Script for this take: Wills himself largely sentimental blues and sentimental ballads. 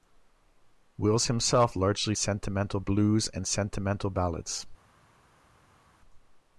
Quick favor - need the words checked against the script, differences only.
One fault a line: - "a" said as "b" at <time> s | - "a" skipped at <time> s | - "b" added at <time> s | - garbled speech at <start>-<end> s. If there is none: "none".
none